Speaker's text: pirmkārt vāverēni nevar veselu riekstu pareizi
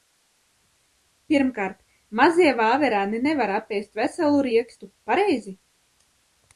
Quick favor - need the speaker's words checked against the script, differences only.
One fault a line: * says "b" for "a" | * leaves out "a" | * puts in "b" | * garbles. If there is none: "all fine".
* puts in "mazie"
* puts in "apēst"